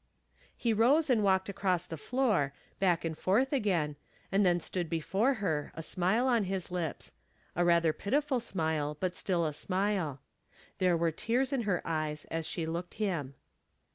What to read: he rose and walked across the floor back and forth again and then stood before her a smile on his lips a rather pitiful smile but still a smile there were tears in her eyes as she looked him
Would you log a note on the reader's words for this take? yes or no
no